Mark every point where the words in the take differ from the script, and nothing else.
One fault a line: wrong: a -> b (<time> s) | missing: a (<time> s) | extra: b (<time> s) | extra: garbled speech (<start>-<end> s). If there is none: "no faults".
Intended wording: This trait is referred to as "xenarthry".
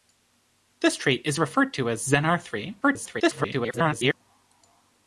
extra: garbled speech (2.8-4.1 s)